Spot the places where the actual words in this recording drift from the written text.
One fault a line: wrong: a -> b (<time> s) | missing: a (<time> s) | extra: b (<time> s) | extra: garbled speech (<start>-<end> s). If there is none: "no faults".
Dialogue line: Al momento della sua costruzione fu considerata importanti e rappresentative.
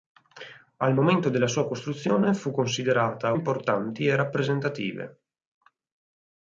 no faults